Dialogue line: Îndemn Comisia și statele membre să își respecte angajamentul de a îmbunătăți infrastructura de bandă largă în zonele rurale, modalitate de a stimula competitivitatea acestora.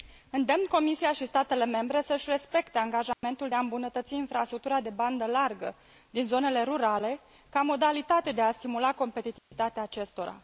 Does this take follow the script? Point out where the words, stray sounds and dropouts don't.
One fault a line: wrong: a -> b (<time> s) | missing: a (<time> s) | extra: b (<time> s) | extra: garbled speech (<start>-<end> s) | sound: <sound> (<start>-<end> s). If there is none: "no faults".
sound: dropout (3.1-3.2 s)
wrong: în -> din (6.1 s)
extra: ca (7.5 s)
sound: dropout (9.4-9.5 s)